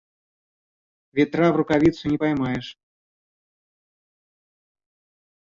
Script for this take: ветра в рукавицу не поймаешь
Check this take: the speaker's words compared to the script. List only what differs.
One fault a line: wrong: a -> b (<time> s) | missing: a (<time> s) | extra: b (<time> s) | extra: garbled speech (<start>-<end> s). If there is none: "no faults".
no faults